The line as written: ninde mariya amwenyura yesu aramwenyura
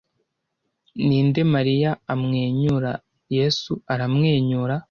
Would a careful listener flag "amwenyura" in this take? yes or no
no